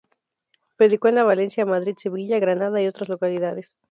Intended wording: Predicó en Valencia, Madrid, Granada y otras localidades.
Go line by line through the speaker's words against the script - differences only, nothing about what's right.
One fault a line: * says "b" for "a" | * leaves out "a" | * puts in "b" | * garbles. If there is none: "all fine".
* puts in "Sevilla"